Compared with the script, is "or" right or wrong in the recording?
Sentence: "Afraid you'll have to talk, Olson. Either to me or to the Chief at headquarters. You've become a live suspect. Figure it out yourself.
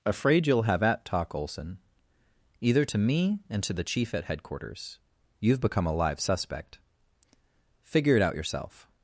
wrong